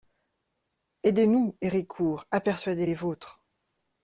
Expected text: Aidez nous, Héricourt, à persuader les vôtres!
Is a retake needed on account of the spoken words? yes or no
no